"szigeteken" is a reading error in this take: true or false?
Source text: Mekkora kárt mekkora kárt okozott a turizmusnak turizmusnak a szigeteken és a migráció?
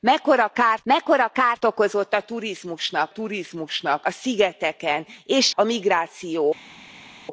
false